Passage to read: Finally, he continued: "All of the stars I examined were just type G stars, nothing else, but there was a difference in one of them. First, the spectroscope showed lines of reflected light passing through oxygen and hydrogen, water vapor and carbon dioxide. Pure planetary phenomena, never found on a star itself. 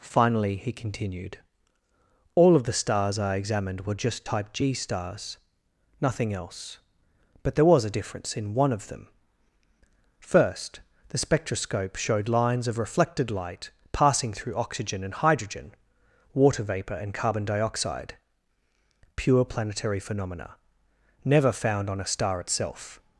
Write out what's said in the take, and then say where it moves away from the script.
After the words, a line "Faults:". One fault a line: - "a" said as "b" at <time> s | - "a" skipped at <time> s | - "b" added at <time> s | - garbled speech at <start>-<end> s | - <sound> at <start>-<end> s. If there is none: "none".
Finally, he continued: "All of the stars I examined were just type G stars, nothing else, but there was a difference in one of them. First, the spectroscope showed lines of reflected light passing through oxygen and hydrogen, water vapor and carbon dioxide. Pure planetary phenomena, never found on a star itself.
Faults:
none